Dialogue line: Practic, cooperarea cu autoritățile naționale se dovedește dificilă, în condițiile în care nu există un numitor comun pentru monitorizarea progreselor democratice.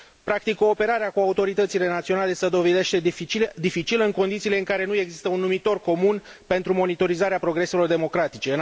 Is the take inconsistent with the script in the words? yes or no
no